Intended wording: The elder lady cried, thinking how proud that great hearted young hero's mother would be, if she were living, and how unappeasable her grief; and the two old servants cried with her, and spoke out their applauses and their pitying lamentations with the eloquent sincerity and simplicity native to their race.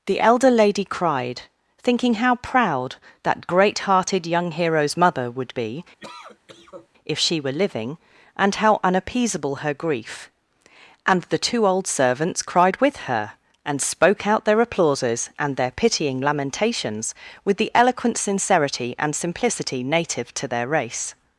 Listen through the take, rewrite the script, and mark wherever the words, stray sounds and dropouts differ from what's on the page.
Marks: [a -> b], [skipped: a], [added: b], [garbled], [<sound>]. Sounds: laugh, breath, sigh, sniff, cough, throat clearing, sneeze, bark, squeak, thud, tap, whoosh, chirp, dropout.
The elder lady cried, thinking how proud that great hearted young hero's mother would be, [cough] if she were living, and how unappeasable her grief; and the two old servants cried with her, and spoke out their applauses and their pitying lamentations with the eloquent sincerity and simplicity native to their race.